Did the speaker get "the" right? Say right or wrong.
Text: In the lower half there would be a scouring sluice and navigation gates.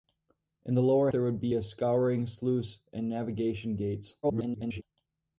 right